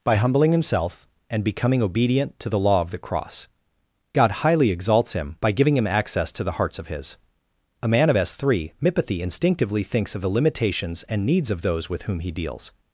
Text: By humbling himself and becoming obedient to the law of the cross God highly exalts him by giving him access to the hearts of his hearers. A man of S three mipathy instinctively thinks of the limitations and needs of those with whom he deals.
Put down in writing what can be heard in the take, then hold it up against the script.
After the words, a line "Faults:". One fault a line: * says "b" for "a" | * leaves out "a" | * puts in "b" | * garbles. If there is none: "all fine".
By humbling himself and becoming obedient to the law of the cross God highly exalts him by giving him access to the hearts of his. A man of S three mipathy instinctively thinks of the limitations and needs of those with whom he deals.
Faults:
* leaves out "hearers"